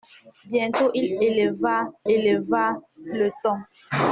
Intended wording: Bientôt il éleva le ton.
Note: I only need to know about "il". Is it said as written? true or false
true